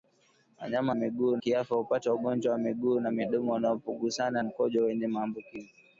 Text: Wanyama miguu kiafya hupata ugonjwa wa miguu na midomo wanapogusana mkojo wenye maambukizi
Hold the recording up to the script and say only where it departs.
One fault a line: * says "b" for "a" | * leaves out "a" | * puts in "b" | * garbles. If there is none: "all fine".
all fine